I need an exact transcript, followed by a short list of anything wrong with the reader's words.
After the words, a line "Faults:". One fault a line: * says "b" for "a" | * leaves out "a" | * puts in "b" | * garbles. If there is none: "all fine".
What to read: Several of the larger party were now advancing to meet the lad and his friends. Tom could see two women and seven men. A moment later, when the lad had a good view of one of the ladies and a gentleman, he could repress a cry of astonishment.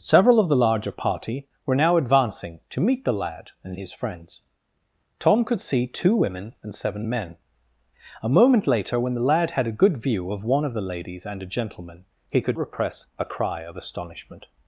Several of the larger party were now advancing to meet the lad and his friends. Tom could see two women and seven men. A moment later, when the lad had a good view of one of the ladies and a gentleman, he could repress a cry of astonishment.
Faults:
all fine